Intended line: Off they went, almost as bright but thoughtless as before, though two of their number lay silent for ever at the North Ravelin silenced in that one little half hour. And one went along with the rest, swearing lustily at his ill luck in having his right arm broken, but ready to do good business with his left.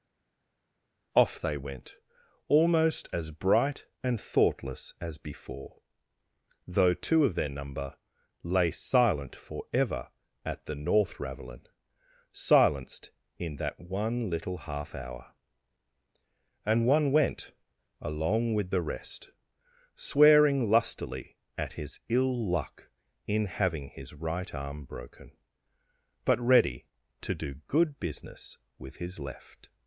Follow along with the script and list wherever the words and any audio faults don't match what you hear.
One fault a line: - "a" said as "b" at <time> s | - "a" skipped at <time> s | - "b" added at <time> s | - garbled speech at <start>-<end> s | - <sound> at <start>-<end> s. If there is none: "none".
- "but" said as "and" at 4.0 s